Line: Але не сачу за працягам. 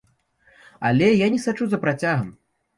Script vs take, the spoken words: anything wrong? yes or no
yes